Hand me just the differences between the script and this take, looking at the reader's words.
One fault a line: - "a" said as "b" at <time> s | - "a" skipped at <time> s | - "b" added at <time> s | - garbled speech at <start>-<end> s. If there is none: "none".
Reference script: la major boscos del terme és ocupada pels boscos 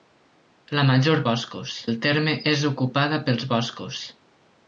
none